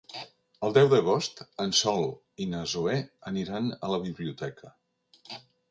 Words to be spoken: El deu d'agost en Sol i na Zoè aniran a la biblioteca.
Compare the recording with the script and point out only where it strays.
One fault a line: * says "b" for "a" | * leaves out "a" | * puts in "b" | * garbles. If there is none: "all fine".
all fine